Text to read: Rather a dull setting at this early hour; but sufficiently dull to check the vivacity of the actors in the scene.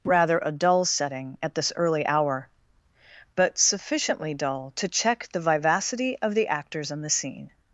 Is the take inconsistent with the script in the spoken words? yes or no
no